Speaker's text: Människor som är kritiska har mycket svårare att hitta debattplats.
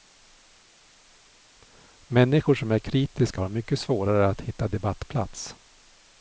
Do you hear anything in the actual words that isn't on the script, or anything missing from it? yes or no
no